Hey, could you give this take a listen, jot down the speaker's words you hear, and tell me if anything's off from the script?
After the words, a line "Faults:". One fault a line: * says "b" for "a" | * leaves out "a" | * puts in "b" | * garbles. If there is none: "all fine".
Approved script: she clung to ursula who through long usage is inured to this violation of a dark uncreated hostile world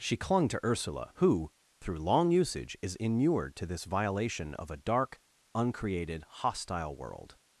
she clung to ursula who through long usage is inured to this violation of a dark uncreated hostile world
Faults:
all fine